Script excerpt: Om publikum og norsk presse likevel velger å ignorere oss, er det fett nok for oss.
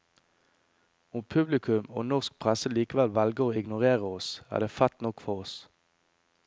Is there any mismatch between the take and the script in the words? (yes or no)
no